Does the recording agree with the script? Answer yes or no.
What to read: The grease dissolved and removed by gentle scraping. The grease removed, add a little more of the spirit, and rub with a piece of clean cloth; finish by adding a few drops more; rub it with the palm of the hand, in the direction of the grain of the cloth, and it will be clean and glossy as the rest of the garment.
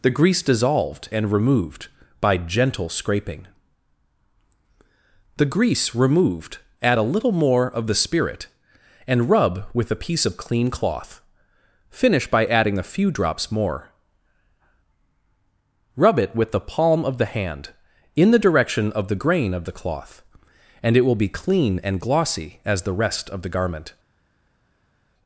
yes